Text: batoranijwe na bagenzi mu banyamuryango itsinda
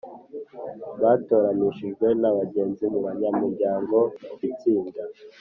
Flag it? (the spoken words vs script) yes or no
no